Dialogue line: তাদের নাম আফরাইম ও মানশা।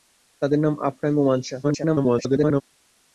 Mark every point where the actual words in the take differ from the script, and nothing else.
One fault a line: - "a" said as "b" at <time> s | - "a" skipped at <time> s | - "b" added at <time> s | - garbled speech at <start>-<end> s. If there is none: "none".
- garbled speech at 1.6-2.6 s